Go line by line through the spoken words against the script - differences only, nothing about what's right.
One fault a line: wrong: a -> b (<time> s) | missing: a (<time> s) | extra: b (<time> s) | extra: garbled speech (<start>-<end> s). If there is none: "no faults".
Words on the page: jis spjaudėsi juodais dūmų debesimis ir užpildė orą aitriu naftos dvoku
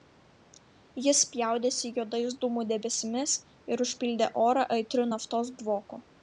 no faults